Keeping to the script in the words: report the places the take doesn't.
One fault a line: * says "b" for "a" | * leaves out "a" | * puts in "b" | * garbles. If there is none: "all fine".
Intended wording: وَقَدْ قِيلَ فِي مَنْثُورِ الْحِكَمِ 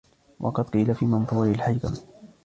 all fine